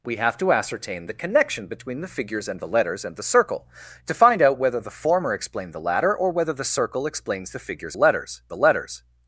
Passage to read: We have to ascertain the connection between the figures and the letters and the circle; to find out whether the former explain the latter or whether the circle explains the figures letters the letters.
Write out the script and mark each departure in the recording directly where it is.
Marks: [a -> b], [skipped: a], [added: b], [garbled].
We have to ascertain the connection between the figures and the letters and the circle; to find out whether the former explain the latter or whether the circle explains the figures letters the letters.